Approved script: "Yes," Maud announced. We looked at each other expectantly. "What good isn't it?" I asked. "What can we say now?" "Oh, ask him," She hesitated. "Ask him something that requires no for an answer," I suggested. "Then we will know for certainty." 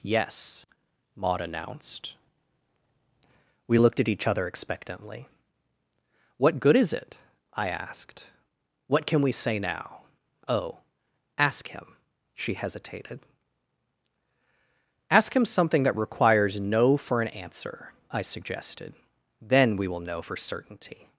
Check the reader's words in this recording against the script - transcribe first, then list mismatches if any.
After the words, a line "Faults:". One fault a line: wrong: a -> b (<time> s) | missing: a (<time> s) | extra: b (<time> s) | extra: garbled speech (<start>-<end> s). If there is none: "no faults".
"Yes," Maud announced. We looked at each other expectantly. "What good is it?" I asked. "What can we say now?" "Oh, ask him," She hesitated. "Ask him something that requires no for an answer," I suggested. "Then we will know for certainty."
Faults:
wrong: isn't -> is (6.7 s)